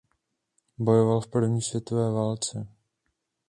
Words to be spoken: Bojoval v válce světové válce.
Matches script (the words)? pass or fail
fail